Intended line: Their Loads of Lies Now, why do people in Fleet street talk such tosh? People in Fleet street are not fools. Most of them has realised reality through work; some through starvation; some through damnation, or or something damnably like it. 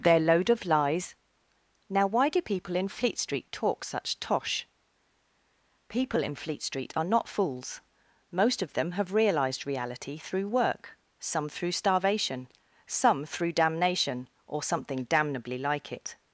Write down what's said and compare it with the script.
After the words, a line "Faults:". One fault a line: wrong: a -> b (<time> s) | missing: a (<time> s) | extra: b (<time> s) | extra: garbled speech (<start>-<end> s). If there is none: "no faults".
Their Load of Lies Now, why do people in Fleet street talk such tosh? People in Fleet street are not fools. Most of them have realised reality through work; some through starvation; some through damnation, or something damnably like it.
Faults:
wrong: Loads -> Load (0.2 s)
wrong: has -> have (8.9 s)
missing: or (14.6 s)